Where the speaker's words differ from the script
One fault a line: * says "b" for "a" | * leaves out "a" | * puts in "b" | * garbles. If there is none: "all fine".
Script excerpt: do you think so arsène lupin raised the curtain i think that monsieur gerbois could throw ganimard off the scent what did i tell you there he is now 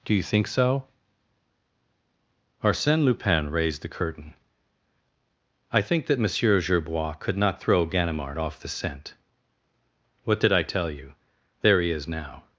* puts in "not"